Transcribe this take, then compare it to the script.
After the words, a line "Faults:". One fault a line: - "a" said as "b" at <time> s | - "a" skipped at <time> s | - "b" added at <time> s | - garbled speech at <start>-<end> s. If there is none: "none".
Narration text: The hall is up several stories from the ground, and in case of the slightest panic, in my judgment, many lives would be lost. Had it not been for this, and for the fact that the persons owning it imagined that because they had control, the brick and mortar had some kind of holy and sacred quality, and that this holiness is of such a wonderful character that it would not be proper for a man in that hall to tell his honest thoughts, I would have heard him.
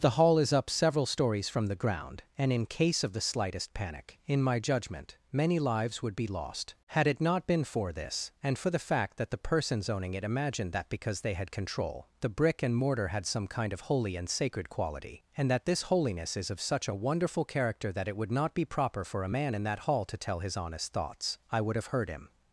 The hall is up several stories from the ground, and in case of the slightest panic, in my judgment, many lives would be lost. Had it not been for this, and for the fact that the persons owning it imagined that because they had control, the brick and mortar had some kind of holy and sacred quality, and that this holiness is of such a wonderful character that it would not be proper for a man in that hall to tell his honest thoughts, I would have heard him.
Faults:
none